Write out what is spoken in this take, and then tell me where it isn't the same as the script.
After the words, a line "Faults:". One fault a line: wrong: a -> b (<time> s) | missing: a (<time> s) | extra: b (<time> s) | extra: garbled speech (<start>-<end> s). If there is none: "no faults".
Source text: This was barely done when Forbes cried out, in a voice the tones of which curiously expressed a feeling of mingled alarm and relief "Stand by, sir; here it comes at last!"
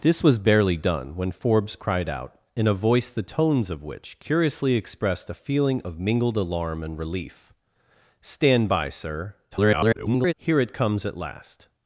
This was barely done when Forbes cried out, in a voice the tones of which curiously expressed a feeling of mingled alarm and relief "Stand by, sir; [garbled] here it comes at last!"
Faults:
extra: garbled speech (9.5-10.3 s)